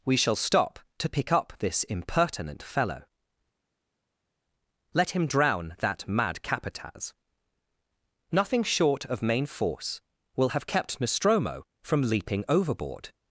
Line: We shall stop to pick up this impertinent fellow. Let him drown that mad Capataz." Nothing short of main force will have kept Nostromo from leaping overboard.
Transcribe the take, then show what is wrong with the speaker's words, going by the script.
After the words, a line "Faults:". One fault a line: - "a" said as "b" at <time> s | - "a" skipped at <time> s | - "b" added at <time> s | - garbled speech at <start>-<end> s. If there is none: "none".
We shall stop to pick up this impertinent fellow. Let him drown that mad Capataz." Nothing short of main force will have kept Nostromo from leaping overboard.
Faults:
none